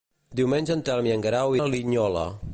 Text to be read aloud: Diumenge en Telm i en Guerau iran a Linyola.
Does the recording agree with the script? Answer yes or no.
no